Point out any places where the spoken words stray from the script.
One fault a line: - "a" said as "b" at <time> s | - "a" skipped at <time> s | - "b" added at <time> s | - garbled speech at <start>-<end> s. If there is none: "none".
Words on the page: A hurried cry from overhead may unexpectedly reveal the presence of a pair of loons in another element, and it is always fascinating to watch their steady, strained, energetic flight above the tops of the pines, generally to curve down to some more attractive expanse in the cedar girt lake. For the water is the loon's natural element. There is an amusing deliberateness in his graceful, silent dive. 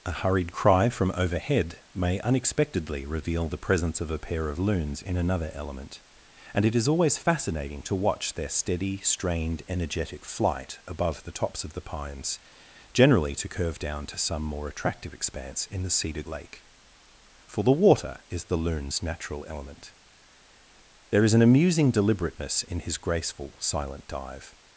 - "girt" skipped at 16.2 s